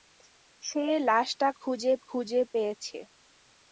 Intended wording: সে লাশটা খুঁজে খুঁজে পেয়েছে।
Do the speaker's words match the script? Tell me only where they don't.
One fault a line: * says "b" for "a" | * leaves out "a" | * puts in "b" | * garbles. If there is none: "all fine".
all fine